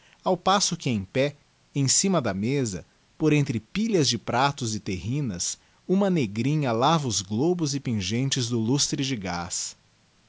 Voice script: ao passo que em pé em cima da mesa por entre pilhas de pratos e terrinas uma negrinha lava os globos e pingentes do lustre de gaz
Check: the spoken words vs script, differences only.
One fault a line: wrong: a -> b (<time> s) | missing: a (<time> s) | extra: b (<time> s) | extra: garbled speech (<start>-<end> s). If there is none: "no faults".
no faults